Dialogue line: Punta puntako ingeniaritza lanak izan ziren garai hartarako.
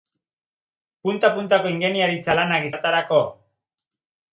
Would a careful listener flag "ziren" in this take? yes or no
yes